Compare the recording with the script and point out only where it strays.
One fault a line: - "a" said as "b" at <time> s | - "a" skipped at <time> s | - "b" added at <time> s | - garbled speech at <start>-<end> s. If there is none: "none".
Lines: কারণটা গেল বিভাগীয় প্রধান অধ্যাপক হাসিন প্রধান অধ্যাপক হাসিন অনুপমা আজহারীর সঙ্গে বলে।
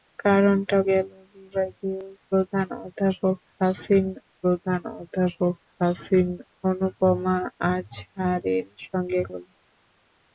none